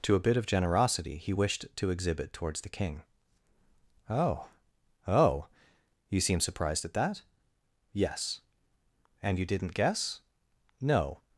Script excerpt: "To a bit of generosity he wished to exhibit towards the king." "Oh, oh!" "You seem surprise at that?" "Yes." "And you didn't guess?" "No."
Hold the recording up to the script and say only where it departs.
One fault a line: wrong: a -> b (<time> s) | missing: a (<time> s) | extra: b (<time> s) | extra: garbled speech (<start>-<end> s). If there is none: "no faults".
wrong: surprise -> surprised (6.4 s)